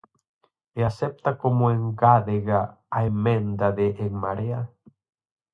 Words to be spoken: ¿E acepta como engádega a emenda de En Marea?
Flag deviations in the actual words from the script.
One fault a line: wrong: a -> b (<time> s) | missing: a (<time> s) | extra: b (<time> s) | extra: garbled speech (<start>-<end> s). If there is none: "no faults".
no faults